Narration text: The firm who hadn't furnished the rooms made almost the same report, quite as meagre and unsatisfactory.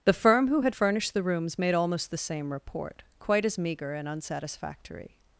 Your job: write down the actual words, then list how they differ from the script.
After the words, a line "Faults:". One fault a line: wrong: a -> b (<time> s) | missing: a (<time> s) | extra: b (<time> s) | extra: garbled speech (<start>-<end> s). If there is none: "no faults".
The firm who had furnished the rooms made almost the same report, quite as meagre and unsatisfactory.
Faults:
wrong: hadn't -> had (0.6 s)